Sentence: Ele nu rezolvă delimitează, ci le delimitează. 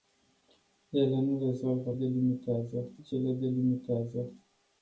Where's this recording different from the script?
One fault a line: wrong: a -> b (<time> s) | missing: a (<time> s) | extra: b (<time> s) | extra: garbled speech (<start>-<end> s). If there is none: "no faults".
no faults